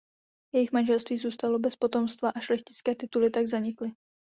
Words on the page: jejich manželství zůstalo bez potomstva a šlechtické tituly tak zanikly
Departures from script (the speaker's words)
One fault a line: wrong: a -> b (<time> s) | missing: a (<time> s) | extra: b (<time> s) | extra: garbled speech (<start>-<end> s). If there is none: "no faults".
no faults